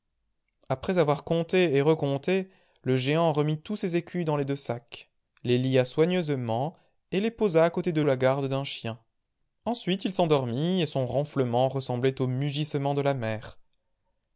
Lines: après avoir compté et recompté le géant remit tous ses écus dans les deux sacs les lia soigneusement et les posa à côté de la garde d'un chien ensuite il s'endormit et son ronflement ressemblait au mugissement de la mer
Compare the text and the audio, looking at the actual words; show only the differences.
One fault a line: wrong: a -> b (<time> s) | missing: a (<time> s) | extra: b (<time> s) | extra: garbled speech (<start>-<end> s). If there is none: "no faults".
no faults